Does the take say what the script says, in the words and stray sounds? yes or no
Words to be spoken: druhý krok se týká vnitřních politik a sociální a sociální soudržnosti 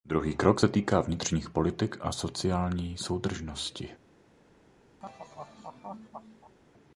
no